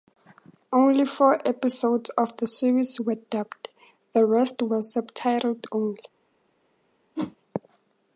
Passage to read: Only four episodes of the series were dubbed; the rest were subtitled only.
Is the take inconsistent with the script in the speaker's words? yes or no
no